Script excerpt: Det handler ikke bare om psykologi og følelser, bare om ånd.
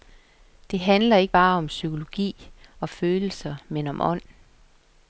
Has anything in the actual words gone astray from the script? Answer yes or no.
yes